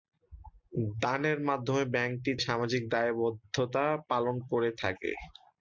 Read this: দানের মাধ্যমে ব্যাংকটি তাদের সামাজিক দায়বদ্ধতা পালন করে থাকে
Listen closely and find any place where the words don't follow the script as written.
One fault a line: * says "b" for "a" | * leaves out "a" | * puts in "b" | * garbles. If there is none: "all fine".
* leaves out "তাদের"